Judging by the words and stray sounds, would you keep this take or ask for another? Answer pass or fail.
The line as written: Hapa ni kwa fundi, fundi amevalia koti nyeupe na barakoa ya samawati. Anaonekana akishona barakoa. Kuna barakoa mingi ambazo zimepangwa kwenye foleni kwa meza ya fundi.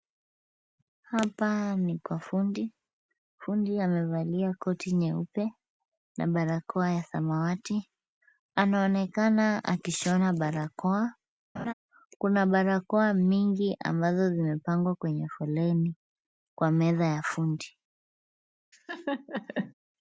fail